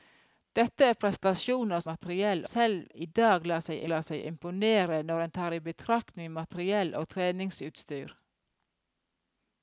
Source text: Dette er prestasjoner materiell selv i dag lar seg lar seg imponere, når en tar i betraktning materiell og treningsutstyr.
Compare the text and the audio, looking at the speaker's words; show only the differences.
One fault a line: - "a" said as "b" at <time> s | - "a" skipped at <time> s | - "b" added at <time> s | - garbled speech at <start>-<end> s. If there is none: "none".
none